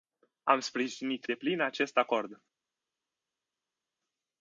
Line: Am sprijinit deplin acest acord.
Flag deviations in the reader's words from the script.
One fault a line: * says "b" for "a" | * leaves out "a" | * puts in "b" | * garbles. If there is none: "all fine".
all fine